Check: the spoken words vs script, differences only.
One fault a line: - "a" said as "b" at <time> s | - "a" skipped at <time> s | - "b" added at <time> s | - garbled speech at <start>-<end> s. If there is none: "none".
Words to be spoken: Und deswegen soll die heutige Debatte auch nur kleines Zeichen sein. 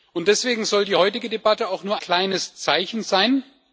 none